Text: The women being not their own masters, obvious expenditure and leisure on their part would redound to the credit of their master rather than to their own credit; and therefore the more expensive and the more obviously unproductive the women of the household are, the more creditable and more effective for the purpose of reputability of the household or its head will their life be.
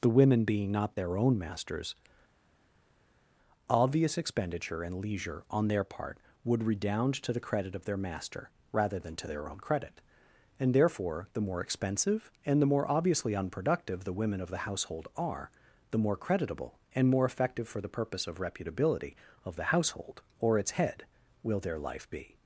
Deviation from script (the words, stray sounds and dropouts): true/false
false